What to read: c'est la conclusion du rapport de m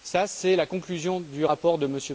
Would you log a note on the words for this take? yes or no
no